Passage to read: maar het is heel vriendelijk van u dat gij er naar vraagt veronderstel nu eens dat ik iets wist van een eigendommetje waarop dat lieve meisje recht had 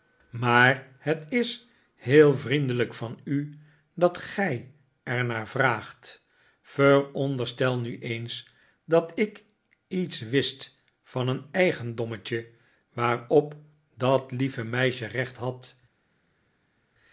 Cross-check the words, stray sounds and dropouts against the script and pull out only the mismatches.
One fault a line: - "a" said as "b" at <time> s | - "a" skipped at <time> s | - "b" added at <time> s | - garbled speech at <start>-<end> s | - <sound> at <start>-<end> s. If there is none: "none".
none